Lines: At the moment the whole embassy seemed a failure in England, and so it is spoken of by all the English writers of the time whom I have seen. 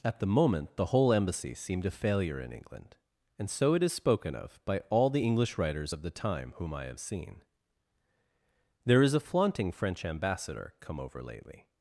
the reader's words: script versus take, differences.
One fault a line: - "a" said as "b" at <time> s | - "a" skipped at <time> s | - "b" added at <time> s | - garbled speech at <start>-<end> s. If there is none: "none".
- "There is a flaunting French Ambassador come over lately" added at 8.8 s